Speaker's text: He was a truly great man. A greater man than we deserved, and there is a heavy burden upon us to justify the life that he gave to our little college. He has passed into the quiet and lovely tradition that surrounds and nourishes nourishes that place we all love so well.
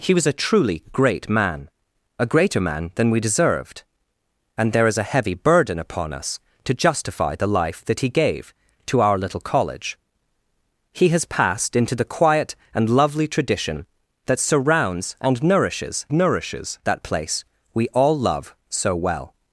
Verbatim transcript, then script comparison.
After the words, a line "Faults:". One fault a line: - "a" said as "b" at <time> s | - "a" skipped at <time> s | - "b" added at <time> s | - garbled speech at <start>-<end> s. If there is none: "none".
He was a truly great man. A greater man than we deserved, and there is a heavy burden upon us to justify the life that he gave to our little college. He has passed into the quiet and lovely tradition that surrounds and nourishes nourishes that place we all love so well.
Faults:
none